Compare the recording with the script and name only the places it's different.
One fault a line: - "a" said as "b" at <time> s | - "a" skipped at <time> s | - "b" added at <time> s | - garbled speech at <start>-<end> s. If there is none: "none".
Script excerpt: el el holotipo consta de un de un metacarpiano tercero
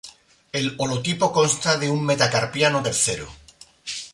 - "el" skipped at 0.7 s
- "de un" skipped at 2.0 s